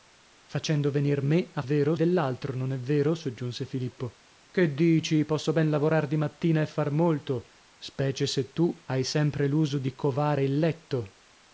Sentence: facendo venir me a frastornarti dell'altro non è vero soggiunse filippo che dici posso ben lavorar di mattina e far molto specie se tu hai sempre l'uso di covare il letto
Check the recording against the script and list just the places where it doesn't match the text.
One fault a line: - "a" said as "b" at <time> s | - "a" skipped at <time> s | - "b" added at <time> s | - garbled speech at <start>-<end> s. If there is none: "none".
- "frastornarti" said as "vero" at 1.6 s